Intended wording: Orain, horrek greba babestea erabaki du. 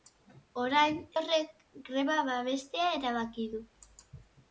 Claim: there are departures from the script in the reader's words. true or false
false